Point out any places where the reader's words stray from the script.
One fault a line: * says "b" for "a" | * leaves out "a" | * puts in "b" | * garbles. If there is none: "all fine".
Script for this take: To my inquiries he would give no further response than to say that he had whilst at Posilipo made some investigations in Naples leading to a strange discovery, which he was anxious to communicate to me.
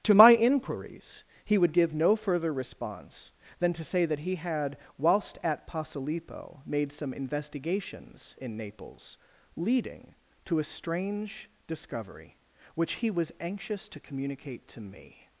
all fine